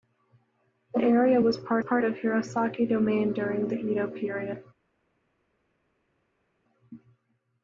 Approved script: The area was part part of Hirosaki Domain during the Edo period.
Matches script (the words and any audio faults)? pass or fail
pass